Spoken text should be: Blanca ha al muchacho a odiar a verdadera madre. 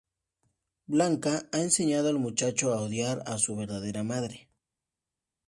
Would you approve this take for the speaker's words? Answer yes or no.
no